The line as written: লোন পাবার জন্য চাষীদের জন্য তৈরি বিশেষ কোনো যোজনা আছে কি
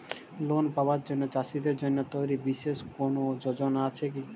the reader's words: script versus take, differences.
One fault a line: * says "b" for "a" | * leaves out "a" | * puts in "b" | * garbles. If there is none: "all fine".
all fine